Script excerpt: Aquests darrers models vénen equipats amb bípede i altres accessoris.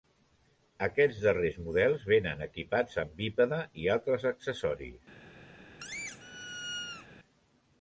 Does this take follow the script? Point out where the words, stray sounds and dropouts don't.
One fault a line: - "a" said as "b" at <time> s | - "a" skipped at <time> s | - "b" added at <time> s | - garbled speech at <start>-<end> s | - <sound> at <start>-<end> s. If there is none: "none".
- squeak at 5.8-7.1 s